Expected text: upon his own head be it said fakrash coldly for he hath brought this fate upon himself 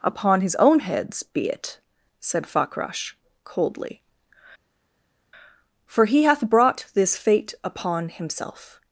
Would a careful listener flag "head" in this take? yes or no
yes